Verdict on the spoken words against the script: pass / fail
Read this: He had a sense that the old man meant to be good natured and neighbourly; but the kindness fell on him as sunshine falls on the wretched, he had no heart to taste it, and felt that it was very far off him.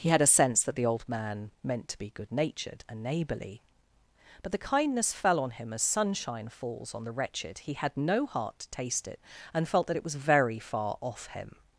pass